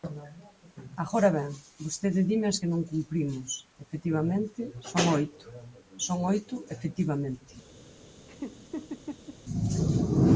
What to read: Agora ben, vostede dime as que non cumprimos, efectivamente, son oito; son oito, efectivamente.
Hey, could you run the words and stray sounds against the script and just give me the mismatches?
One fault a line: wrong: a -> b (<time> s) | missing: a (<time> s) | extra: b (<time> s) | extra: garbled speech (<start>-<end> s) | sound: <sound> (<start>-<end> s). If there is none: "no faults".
sound: laugh (8.3-9.4 s)